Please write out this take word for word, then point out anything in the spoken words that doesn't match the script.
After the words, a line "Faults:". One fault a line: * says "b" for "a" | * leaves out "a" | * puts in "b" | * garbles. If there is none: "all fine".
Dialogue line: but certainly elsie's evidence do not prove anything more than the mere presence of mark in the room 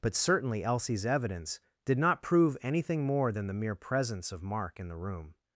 but certainly elsie's evidence did not prove anything more than the mere presence of mark in the room
Faults:
* says "did" for "do"